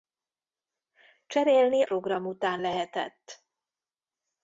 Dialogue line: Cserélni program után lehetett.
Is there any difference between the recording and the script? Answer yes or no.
no